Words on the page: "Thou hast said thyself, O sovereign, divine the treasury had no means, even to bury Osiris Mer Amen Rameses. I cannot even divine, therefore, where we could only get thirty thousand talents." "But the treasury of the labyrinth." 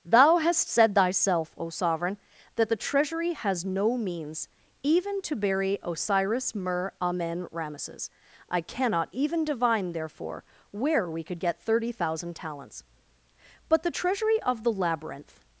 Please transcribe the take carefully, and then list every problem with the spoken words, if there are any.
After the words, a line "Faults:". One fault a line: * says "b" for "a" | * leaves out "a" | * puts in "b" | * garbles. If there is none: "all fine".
"Thou hast said thyself, O sovereign, that the treasury has no means, even to bury Osiris Mer Amen Rameses. I cannot even divine, therefore, where we could get thirty thousand talents." "But the treasury of the labyrinth."
Faults:
* says "that" for "divine"
* says "has" for "had"
* leaves out "only"